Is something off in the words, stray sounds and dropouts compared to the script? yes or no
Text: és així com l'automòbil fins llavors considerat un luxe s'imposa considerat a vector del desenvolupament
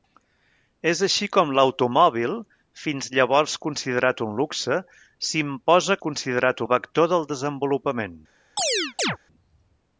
yes